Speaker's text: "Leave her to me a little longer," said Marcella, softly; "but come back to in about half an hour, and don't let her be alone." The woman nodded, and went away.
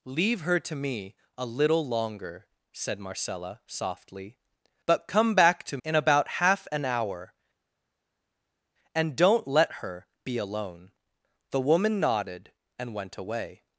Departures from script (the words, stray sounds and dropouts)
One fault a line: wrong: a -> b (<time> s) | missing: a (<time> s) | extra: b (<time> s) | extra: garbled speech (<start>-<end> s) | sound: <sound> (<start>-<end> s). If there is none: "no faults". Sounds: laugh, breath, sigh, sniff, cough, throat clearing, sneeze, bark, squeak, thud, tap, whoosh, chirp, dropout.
no faults